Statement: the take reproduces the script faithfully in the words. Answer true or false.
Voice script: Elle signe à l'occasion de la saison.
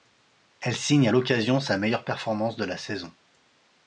false